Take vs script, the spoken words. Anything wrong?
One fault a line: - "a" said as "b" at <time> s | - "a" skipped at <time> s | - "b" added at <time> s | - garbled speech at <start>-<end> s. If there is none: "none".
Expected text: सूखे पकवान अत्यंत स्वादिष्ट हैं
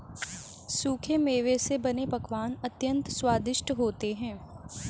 - "मेवे से बने" added at 1.2 s
- "होते" added at 3.7 s